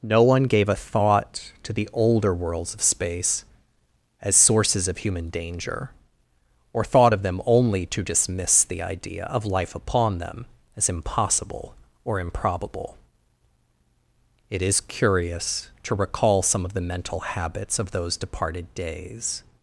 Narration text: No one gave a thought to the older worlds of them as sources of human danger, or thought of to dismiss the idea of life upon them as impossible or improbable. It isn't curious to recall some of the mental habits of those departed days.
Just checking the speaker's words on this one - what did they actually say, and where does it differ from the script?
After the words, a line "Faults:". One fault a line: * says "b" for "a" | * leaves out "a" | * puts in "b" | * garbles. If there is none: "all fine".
No one gave a thought to the older worlds of space as sources of human danger, or thought of them only to dismiss the idea of life upon them as impossible or improbable. It is curious to recall some of the mental habits of those departed days.
Faults:
* says "space" for "them"
* puts in "them only"
* says "is" for "isn't"